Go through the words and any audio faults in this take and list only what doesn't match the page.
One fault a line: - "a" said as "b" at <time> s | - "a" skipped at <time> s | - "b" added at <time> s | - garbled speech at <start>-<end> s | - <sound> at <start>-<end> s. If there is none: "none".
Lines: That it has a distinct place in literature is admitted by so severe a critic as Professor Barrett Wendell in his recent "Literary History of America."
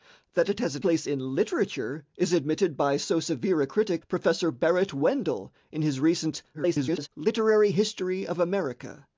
- "distinct" skipped at 0.8 s
- "as" skipped at 4.0 s
- garbled speech at 6.5-7.1 s